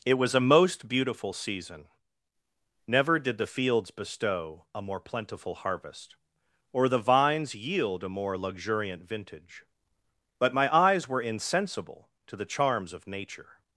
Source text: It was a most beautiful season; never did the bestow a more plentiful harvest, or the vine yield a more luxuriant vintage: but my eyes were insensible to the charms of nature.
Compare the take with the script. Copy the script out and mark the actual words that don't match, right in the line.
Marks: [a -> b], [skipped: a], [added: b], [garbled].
It was a most beautiful season; never did the [added: fields] bestow a more plentiful harvest, or the [vine -> vines] yield a more luxuriant vintage: but my eyes were insensible to the charms of nature.